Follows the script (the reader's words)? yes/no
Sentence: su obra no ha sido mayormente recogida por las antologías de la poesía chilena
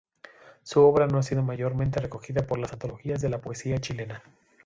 yes